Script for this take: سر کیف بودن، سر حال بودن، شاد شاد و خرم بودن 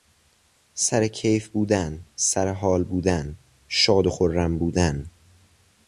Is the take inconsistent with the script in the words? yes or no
yes